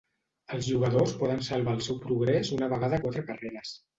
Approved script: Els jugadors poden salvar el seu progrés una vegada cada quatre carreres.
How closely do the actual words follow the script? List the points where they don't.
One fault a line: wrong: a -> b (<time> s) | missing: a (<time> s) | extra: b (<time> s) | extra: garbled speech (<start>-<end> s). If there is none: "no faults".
missing: cada (3.0 s)